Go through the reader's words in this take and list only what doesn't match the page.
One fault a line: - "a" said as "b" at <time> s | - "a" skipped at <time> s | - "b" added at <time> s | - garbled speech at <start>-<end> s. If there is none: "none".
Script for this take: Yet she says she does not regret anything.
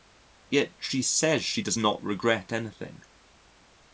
none